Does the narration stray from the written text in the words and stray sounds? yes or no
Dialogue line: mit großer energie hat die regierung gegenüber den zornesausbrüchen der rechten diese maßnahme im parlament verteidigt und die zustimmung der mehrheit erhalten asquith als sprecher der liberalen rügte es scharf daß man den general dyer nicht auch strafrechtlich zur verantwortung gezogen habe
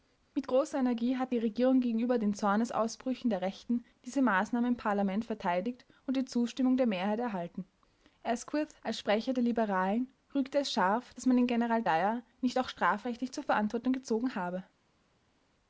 no